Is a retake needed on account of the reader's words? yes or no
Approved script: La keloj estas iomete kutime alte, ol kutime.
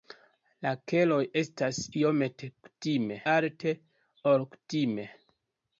no